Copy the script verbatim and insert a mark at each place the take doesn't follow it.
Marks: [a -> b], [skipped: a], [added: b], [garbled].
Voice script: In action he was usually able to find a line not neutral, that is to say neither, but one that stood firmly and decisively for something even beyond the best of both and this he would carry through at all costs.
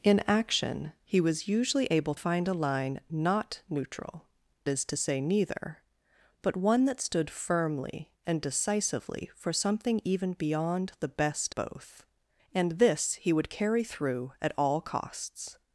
In action he was usually able [skipped: to] find a line not neutral, [skipped: that] is to say neither, but one that stood firmly and decisively for something even beyond the best [skipped: of] both and this he would carry through at all costs.